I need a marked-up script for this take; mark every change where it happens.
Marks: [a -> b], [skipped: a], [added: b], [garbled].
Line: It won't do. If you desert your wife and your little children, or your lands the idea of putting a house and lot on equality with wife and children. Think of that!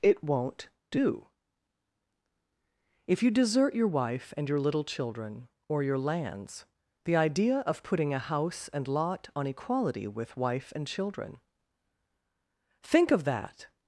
It won't do. If you desert your wife and your little children, or your lands the idea of putting a house and lot on equality with wife and children. Think of that!